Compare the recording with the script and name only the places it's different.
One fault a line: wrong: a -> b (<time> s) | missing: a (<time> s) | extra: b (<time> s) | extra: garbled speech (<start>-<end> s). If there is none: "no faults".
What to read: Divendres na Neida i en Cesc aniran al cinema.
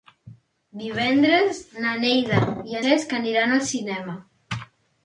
missing: en (2.8 s)